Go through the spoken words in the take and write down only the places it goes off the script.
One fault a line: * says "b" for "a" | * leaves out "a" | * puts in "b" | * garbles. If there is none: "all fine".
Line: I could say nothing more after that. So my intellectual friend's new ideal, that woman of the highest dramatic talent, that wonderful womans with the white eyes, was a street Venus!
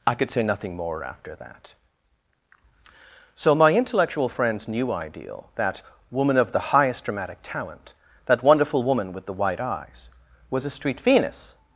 * says "woman" for "womans"